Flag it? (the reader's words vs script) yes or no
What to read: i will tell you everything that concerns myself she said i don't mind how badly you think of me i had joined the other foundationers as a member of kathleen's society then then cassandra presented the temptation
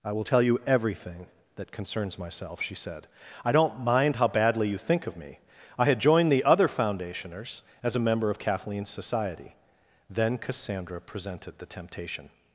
yes